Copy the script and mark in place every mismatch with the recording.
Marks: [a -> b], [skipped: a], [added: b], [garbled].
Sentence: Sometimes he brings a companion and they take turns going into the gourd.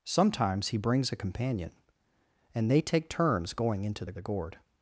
Sometimes he brings a companion and they take turns going into the [added: the] gourd.